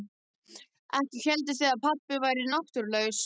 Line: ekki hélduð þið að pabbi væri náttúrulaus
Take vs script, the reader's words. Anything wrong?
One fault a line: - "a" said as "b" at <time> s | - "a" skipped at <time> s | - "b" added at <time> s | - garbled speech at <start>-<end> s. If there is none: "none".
none